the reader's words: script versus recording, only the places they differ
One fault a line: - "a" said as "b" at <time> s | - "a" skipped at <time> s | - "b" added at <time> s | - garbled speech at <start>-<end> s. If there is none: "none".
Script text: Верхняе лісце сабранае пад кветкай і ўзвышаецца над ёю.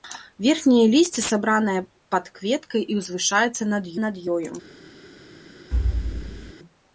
- "над" added at 4.1 s